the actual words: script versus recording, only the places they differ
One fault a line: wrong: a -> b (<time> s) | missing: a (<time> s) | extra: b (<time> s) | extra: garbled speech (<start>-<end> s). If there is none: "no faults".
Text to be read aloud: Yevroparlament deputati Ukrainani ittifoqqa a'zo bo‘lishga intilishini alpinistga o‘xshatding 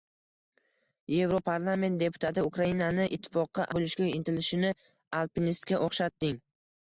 missing: a'zo (3.7 s)